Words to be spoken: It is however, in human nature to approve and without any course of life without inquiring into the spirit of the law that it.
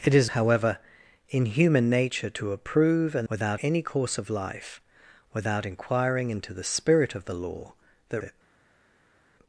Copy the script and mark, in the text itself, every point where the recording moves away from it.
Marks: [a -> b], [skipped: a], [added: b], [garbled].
It is however, in human nature to approve and without any course of life without inquiring into the spirit of the law that it.